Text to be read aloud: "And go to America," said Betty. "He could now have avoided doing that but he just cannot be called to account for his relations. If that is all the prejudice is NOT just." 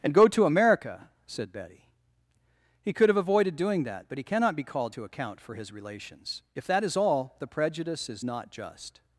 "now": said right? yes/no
no